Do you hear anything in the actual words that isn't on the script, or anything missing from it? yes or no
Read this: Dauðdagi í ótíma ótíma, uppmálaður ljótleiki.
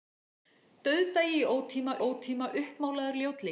no